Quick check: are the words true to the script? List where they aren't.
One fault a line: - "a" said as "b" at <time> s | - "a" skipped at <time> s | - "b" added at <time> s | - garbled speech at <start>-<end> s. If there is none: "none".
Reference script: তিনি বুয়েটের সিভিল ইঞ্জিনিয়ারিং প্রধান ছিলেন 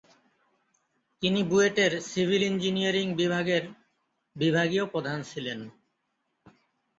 - "বিভাগের বিভাগীয়" added at 3.1 s